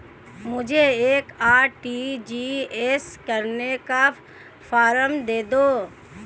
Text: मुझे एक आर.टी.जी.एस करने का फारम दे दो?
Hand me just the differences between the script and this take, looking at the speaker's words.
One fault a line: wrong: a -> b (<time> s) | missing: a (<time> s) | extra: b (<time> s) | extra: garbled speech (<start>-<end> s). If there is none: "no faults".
no faults